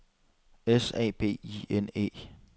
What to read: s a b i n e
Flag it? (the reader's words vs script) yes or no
no